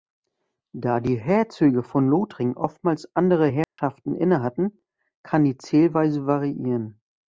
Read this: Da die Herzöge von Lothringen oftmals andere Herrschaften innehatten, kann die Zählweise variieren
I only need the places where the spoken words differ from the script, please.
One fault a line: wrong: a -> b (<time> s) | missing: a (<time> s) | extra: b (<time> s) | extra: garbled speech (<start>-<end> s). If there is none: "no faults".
no faults